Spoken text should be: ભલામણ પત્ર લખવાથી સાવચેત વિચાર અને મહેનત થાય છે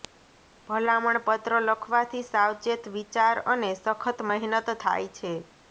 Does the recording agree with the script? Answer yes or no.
no